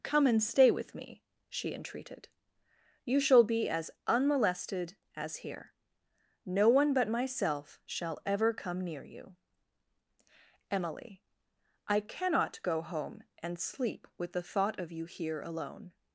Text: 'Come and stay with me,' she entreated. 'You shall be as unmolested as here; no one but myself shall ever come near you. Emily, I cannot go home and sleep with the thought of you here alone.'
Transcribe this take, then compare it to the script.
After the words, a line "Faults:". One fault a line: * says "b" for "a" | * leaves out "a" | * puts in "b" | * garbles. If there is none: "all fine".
'Come and stay with me,' she entreated. 'You shall be as unmolested as here; no one but myself shall ever come near you. Emily, I cannot go home and sleep with the thought of you here alone.'
Faults:
all fine